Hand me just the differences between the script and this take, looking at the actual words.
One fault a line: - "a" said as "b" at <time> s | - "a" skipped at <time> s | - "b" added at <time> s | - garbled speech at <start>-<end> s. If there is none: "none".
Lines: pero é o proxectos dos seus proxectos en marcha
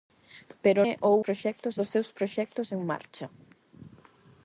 none